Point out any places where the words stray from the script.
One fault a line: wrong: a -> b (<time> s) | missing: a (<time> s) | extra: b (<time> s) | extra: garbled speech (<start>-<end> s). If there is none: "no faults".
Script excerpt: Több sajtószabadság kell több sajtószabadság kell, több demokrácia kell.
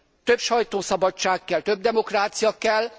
missing: sajtószabadság kell több (1.8 s)